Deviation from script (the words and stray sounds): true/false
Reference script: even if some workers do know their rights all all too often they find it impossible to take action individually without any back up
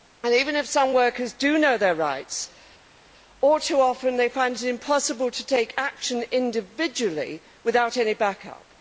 true